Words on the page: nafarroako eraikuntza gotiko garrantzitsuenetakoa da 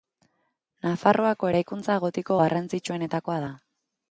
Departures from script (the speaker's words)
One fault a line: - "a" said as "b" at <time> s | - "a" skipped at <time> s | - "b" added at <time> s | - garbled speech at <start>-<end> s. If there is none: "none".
none